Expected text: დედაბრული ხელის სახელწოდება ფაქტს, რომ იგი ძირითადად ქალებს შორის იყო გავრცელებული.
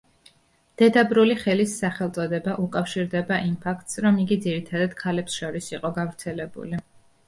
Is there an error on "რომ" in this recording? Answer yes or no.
no